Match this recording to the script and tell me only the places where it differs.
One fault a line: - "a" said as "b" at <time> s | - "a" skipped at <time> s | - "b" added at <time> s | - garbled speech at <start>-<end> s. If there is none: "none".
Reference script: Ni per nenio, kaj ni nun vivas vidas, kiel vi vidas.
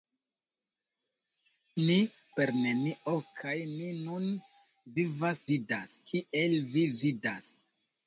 none